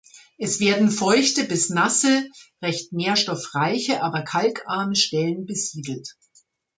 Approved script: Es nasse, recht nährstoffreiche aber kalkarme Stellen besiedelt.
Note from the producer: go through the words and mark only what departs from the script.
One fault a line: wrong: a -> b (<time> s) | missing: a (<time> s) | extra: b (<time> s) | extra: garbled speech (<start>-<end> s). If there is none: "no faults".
extra: werden feuchte bis (0.6 s)